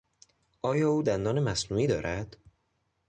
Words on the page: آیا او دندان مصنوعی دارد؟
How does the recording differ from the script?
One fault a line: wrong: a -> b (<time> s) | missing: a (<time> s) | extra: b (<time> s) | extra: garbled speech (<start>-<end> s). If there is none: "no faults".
no faults